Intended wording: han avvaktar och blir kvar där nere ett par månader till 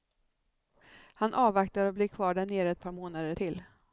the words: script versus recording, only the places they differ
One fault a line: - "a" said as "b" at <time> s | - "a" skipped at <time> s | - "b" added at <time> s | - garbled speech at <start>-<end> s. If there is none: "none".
none